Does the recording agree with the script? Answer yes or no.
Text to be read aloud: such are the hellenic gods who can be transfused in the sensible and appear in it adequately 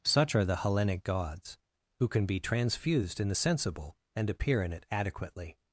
yes